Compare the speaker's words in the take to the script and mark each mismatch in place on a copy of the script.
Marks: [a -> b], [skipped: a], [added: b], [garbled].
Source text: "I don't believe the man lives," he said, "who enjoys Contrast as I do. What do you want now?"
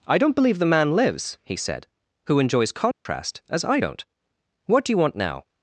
"I don't believe the man lives," he said, "who enjoys Contrast as I [do. -> don't] What do you want now?"